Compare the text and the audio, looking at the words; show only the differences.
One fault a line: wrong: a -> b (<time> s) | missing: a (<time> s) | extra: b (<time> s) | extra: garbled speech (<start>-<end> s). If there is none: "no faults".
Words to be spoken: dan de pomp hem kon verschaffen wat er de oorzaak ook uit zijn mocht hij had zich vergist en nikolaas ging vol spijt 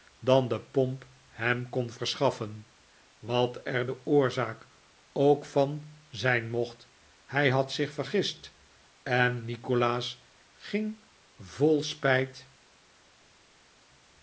wrong: uit -> van (5.4 s)